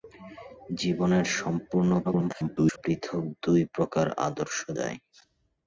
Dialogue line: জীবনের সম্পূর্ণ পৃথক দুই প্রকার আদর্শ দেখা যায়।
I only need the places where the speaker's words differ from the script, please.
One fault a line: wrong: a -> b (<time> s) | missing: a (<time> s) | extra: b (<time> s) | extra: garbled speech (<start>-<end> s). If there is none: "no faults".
extra: garbled speech (2.0-2.8 s)
missing: দেখা (4.6 s)